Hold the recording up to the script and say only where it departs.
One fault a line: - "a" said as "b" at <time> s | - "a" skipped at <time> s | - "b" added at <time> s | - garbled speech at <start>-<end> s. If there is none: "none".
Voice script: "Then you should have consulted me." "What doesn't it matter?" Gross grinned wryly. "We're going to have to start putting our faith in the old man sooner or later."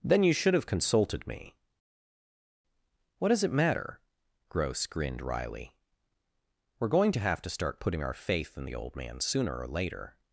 - "doesn't" said as "does" at 3.3 s